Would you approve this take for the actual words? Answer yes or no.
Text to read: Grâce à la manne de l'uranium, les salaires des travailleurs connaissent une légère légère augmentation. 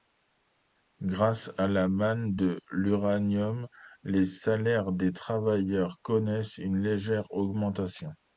no